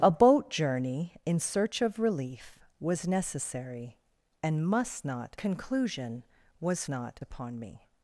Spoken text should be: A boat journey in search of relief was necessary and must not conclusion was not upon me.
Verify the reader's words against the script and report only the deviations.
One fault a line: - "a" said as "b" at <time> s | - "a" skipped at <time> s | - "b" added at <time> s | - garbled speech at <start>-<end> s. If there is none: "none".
none